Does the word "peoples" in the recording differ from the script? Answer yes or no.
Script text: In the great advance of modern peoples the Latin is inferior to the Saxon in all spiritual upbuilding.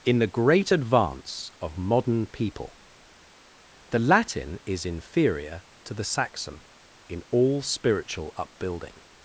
yes